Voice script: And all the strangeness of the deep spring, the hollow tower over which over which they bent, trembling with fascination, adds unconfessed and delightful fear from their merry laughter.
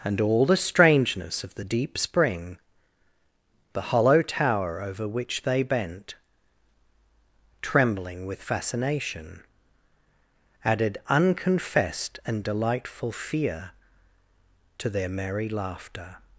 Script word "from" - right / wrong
wrong